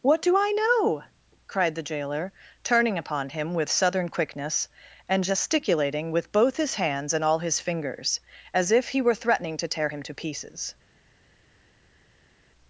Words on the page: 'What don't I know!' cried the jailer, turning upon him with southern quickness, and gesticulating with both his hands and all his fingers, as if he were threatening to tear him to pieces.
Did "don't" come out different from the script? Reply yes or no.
yes